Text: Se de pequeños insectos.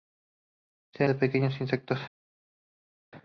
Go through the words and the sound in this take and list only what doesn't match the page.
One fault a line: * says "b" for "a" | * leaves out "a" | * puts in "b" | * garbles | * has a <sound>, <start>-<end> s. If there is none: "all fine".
all fine